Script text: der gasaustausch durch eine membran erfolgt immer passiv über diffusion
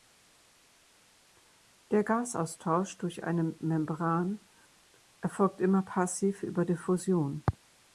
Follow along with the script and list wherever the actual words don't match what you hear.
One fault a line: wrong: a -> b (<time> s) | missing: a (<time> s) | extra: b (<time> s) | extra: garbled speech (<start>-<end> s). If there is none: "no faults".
no faults